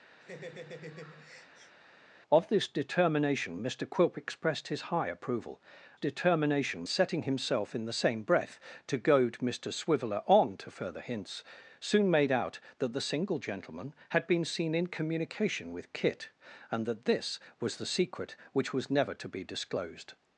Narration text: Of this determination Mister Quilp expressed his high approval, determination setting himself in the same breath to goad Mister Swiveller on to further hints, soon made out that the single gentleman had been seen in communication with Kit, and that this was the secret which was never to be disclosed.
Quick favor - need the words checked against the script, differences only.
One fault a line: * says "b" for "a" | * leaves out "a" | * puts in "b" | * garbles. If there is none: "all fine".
all fine